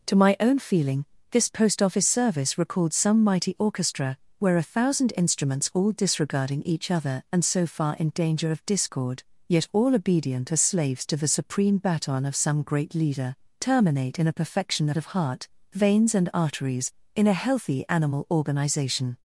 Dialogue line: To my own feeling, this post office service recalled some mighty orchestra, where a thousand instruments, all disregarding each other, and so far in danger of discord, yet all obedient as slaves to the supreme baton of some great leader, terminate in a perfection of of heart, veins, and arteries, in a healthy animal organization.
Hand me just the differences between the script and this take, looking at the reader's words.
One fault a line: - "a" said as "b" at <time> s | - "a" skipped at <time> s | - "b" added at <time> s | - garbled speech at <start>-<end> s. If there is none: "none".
none